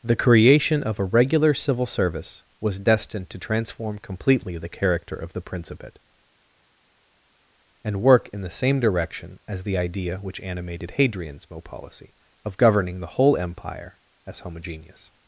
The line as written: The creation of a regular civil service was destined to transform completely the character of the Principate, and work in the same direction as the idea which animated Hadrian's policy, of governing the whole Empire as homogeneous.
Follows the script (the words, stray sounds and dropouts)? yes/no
no